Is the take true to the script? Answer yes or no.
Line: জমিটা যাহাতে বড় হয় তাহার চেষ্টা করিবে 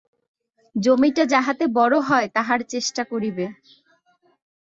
yes